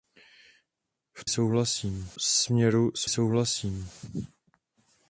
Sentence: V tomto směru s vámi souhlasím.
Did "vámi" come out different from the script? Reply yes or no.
yes